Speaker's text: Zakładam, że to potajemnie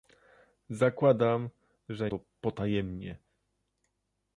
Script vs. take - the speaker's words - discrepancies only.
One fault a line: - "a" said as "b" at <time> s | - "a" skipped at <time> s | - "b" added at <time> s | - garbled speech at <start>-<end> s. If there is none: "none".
none